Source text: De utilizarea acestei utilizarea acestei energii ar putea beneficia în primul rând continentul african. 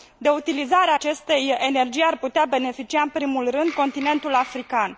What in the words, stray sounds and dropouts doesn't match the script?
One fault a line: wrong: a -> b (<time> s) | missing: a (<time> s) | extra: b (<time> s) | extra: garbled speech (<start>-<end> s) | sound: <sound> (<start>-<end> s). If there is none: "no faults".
missing: utilizarea acestei (1.5 s)